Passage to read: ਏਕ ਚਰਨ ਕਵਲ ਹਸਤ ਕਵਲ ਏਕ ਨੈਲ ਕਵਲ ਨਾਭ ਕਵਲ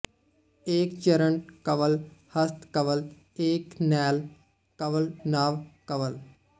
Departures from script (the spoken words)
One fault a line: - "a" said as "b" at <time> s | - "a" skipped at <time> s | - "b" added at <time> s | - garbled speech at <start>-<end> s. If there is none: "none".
none